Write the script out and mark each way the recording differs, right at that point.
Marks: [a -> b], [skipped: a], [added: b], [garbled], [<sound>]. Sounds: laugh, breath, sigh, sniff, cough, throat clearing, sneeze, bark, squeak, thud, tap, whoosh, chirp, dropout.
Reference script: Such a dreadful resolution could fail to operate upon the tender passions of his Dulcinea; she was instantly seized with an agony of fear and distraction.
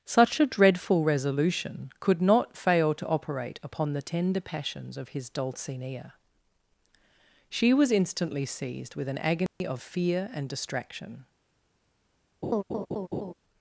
Such a dreadful resolution could [added: not] fail to operate upon the tender passions of his Dulcinea; she was instantly seized with an agony [dropout] of fear and distraction. [laugh]